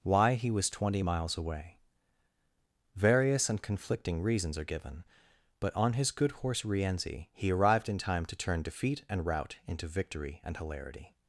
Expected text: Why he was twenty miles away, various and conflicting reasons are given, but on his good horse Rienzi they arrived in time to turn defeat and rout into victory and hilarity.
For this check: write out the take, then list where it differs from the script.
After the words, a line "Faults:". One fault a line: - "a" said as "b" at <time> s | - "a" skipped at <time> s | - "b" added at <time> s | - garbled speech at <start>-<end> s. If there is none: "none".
Why he was twenty miles away, various and conflicting reasons are given, but on his good horse Rienzi he arrived in time to turn defeat and rout into victory and hilarity.
Faults:
- "they" said as "he" at 7.3 s